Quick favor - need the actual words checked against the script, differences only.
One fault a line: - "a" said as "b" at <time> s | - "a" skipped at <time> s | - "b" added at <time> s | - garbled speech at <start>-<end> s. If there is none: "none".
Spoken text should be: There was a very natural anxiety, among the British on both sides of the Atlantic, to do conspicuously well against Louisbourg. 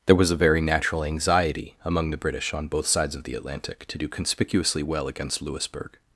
none